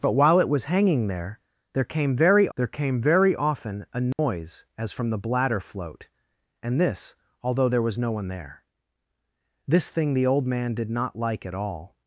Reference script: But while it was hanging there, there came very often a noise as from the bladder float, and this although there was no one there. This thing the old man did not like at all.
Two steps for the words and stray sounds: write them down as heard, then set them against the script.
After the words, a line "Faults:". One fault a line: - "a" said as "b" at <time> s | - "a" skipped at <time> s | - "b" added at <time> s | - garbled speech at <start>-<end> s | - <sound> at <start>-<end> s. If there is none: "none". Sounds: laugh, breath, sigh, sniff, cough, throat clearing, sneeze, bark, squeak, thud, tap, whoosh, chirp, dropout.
But while it was hanging there, there came very there came very often a noise as from the bladder float, and this although there was no one there. This thing the old man did not like at all.
Faults:
- "there came very" added at 2.6 s
- dropout at 4.1-4.2 s